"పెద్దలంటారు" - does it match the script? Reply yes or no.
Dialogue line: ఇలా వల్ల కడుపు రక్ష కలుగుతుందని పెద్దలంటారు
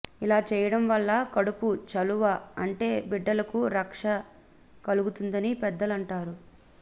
yes